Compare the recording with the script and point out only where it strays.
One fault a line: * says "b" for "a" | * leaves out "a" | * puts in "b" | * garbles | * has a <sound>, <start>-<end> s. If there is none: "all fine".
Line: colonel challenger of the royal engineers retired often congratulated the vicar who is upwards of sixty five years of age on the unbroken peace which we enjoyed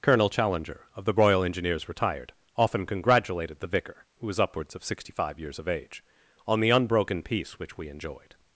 * says "was" for "is"